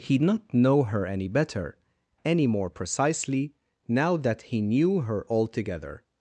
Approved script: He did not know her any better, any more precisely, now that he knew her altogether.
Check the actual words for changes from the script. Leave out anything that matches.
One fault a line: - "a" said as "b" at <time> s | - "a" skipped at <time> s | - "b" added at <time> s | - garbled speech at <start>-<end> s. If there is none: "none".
- "did" skipped at 0.2 s